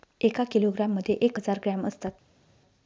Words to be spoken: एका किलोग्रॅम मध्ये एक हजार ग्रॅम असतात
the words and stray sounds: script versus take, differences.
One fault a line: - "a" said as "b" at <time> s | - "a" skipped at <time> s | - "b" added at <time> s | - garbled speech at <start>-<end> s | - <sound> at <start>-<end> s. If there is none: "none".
none